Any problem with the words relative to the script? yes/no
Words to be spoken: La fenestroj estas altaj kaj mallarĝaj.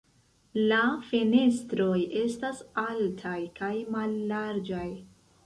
no